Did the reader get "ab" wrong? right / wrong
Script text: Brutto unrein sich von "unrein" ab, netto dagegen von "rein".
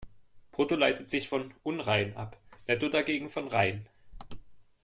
right